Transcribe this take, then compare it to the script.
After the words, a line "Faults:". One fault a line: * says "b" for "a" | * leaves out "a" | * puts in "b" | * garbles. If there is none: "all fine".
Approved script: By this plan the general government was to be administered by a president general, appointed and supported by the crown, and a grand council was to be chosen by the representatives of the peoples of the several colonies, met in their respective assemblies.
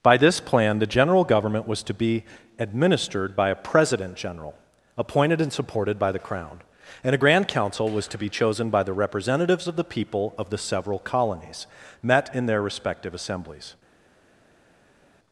By this plan the general government was to be administered by a president general, appointed and supported by the crown, and a grand council was to be chosen by the representatives of the people of the several colonies, met in their respective assemblies.
Faults:
* says "people" for "peoples"